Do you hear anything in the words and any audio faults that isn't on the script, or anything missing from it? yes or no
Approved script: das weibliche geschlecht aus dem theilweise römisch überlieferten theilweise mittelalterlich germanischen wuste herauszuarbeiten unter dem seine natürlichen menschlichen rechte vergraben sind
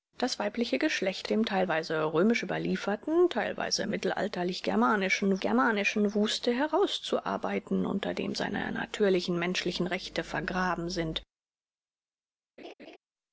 yes